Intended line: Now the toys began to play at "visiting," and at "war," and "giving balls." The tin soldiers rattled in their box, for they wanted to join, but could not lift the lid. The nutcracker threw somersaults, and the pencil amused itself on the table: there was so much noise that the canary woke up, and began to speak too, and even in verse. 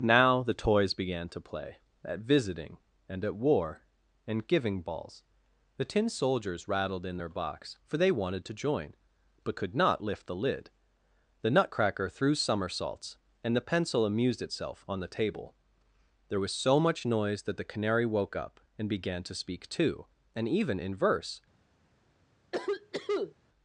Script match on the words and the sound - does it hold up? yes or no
no